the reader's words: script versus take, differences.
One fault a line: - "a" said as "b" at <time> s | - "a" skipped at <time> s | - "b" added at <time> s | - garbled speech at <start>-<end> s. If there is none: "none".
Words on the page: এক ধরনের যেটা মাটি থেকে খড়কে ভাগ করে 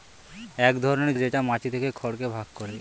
none